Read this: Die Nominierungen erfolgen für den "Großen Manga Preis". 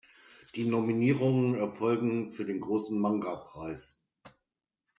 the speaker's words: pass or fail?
pass